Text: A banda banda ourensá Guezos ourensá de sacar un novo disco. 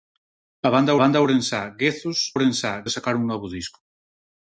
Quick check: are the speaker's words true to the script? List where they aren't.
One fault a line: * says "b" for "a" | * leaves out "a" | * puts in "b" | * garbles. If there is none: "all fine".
all fine